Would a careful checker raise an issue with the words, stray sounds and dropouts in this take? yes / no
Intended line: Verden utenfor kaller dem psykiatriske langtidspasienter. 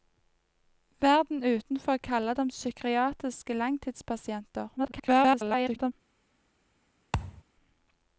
yes